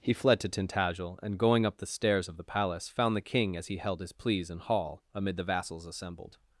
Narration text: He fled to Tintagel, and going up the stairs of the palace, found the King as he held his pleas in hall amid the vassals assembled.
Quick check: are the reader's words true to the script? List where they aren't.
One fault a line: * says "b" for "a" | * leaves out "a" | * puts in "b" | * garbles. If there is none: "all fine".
all fine